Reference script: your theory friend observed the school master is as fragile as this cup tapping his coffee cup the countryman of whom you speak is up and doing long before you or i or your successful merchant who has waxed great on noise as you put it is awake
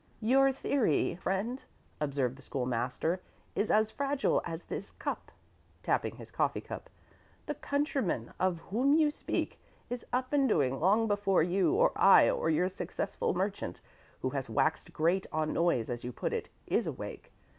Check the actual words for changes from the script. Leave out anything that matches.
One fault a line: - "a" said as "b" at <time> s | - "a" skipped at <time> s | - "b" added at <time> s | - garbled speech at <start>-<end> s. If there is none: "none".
none